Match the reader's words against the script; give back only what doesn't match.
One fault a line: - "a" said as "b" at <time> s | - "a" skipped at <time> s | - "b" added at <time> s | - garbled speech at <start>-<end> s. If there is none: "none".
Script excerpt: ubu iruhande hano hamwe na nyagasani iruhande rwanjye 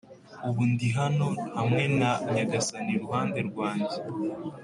- "iruhande" said as "ndi" at 0.7 s